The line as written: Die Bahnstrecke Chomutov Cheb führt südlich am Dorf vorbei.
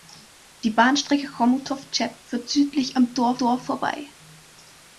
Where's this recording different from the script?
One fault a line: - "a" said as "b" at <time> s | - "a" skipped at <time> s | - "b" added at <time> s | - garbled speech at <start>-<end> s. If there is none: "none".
- "Dorf" added at 3.4 s